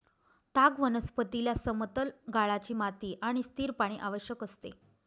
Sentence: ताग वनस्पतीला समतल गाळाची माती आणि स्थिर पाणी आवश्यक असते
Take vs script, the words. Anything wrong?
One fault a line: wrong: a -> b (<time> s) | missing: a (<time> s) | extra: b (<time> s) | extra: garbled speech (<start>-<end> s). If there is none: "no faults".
no faults